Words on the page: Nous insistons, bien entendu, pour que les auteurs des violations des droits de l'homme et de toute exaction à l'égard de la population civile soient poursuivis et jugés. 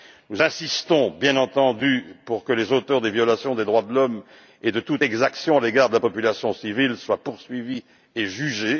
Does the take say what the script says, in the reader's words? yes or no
yes